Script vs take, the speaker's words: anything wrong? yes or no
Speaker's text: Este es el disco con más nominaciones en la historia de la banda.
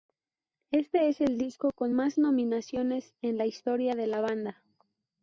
no